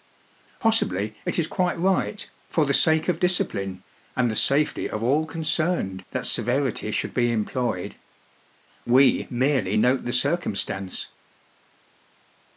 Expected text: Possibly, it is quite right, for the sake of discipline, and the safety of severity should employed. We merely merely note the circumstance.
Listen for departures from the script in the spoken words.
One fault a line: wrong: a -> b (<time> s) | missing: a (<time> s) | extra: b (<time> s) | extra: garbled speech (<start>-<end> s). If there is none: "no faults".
extra: all concerned that (5.0 s)
extra: be (7.1 s)
missing: merely (9.8 s)